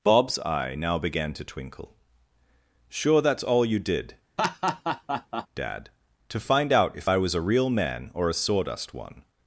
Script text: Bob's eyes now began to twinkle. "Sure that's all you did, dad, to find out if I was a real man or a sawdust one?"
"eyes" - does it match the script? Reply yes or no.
no